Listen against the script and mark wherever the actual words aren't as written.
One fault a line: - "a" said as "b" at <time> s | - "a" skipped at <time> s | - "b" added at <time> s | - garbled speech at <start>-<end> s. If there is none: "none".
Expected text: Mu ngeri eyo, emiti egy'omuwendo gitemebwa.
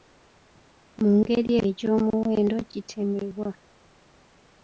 - "eyo emiti" skipped at 1.5 s